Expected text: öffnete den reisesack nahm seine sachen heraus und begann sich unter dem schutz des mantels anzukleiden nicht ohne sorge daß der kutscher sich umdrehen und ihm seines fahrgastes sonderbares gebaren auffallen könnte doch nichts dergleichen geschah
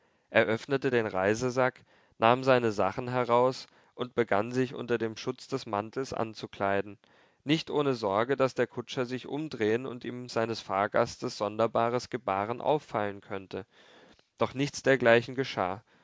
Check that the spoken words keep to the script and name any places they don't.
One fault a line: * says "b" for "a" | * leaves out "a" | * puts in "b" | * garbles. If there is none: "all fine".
all fine